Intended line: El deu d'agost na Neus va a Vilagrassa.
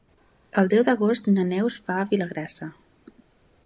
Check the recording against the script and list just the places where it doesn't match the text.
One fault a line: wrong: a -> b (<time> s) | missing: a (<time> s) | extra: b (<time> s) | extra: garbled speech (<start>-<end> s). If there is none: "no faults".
no faults